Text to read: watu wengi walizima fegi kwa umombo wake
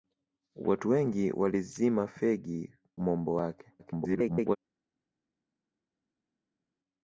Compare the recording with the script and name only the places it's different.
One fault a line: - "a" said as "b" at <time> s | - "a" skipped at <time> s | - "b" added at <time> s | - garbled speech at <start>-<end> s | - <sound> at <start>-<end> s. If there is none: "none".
- "kwa" skipped at 2.7 s
- garbled speech at 3.8-4.6 s